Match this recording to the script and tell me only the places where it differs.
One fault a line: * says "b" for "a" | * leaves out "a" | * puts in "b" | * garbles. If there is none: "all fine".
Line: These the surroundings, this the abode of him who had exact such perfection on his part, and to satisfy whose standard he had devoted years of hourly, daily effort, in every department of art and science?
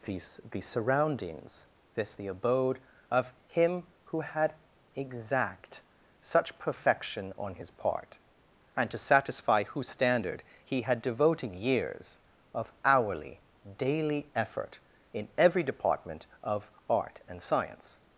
all fine